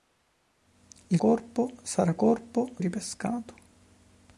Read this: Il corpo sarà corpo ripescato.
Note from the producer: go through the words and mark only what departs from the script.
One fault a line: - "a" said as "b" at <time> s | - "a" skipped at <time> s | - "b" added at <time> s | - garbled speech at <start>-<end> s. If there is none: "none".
none